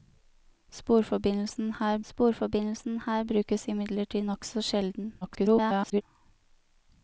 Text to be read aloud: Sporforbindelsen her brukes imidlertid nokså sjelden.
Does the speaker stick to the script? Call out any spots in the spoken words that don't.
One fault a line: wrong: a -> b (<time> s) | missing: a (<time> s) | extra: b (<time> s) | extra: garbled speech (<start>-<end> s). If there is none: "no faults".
extra: sporforbindelsen her (2.1 s)
extra: garbled speech (5.2-6.0 s)